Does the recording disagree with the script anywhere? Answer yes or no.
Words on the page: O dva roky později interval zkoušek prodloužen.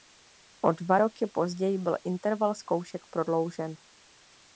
yes